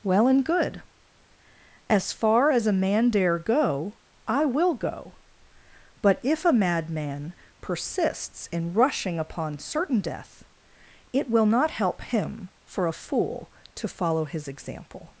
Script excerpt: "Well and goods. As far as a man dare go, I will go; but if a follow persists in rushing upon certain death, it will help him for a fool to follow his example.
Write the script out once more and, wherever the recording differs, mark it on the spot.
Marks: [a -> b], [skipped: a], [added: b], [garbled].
"Well and [goods. -> good] As far as a man dare go, I will go; but if a [follow -> madman] persists in rushing upon certain death, it will [added: not] help him for a fool to follow his example.